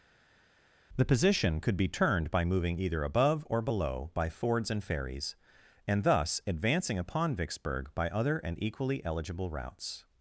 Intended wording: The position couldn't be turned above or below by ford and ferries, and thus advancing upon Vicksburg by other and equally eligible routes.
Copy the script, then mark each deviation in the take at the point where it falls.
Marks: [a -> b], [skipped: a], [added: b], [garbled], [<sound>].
The position [couldn't -> could] be turned [added: by moving either] above or below by [ford -> fords] and ferries, and thus advancing upon Vicksburg by other and equally eligible routes.